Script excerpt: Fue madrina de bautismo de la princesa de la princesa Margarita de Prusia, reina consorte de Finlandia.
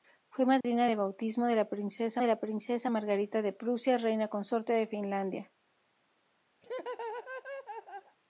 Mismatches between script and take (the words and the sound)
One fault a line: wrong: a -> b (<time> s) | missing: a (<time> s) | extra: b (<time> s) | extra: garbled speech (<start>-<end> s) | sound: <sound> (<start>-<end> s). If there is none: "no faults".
sound: dropout (0.6-0.6 s)
sound: laugh (6.6-8.2 s)